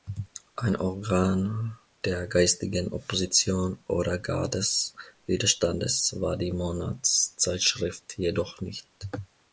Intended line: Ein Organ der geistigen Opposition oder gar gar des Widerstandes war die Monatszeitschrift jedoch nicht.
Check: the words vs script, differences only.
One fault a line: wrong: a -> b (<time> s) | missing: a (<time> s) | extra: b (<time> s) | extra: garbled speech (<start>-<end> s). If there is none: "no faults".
missing: gar (4.5 s)